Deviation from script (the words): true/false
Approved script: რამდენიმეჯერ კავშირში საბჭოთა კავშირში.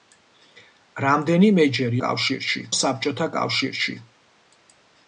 false